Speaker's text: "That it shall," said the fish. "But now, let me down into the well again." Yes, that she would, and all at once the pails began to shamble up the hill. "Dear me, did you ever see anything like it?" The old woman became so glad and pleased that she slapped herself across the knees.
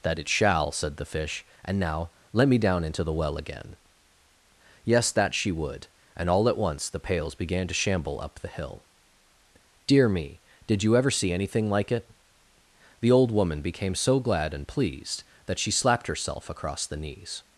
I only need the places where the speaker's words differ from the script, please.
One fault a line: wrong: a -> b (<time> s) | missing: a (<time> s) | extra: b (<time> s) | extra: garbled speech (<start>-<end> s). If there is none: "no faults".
wrong: But -> And (1.6 s)